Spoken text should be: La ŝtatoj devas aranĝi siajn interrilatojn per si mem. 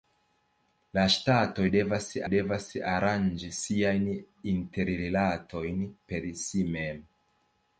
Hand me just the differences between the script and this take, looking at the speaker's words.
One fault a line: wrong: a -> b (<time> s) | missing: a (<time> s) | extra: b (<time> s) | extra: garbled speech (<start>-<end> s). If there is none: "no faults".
extra: devas (2.3 s)